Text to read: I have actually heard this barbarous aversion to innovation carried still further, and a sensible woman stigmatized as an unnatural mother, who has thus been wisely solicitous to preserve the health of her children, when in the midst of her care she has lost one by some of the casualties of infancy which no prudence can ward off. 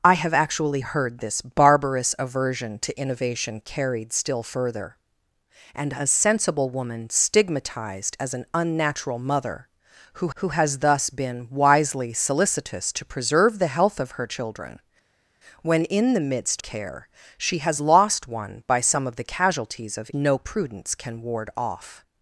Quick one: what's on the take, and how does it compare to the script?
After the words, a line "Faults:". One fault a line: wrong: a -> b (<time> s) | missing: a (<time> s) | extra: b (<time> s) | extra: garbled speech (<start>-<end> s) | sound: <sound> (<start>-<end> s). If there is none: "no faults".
I have actually heard this barbarous aversion to innovation carried still further, and a sensible woman stigmatized as an unnatural mother, who who has thus been wisely solicitous to preserve the health of her children, when in the midst care she has lost one by some of the casualties of no prudence can ward off.
Faults:
extra: who (10.3 s)
missing: of her (16.6 s)
missing: infancy which (20.1 s)